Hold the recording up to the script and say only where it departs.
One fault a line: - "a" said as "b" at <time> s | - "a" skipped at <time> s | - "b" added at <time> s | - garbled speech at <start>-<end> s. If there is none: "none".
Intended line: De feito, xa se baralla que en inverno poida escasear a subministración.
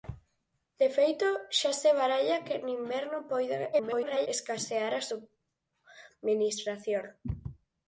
- garbled speech at 3.7-4.3 s